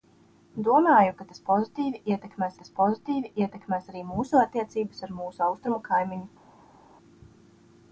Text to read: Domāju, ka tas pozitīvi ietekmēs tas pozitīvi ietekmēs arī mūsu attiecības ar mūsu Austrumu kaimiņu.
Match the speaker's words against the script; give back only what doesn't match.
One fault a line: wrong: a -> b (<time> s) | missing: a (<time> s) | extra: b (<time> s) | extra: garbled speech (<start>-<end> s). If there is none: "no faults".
no faults